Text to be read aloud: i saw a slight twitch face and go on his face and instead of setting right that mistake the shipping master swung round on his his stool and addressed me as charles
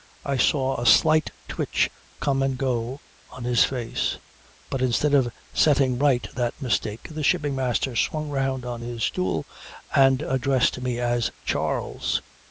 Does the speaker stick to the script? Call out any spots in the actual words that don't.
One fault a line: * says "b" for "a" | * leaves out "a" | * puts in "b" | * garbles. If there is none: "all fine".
* says "come" for "face"
* says "but" for "and"
* leaves out "his"